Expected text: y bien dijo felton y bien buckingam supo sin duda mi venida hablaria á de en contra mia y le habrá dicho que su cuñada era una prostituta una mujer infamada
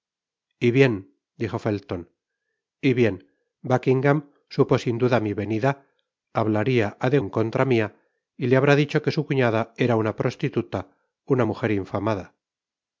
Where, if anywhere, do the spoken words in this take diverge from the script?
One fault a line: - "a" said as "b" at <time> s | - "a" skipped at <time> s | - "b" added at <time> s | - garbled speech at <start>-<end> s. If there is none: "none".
none